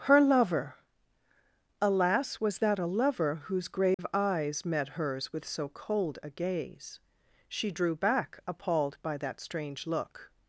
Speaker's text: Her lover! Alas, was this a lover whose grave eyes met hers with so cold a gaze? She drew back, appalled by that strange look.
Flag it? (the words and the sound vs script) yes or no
yes